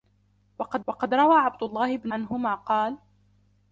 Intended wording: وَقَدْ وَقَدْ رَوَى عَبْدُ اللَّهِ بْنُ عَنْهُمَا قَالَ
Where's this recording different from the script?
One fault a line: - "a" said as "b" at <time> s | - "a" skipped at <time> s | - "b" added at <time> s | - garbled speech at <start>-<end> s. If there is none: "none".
none